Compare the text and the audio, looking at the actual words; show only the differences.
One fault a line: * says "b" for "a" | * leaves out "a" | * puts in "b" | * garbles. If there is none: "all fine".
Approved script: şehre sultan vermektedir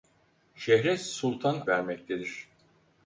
all fine